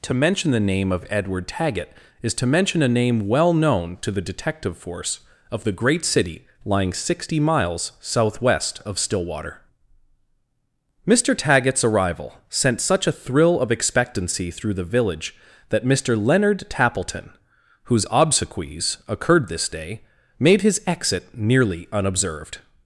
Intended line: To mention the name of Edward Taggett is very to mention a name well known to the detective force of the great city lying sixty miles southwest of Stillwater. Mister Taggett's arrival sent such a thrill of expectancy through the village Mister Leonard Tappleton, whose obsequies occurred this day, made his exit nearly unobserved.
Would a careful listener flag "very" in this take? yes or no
yes